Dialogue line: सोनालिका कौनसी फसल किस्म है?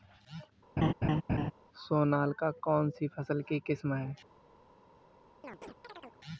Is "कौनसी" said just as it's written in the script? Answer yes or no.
yes